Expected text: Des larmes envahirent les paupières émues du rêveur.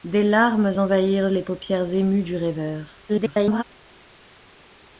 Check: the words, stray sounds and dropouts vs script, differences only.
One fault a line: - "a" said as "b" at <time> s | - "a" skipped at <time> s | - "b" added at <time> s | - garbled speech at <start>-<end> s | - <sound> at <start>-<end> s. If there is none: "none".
- garbled speech at 3.1-3.6 s